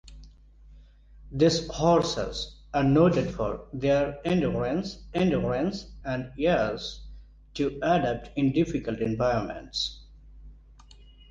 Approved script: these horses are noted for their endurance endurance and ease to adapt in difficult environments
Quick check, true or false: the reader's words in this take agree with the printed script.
true